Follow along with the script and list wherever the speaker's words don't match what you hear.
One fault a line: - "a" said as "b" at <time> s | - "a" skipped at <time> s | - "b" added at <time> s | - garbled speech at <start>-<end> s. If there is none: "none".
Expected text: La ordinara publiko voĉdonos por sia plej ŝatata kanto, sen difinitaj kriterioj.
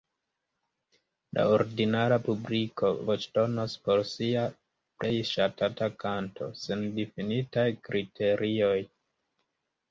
none